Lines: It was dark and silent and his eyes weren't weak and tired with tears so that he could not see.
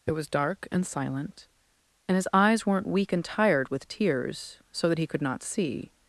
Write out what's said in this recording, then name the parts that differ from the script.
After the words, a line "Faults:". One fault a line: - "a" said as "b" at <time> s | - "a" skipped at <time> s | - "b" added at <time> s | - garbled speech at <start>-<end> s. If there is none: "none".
It was dark and silent and his eyes weren't weak and tired with tears so that he could not see.
Faults:
none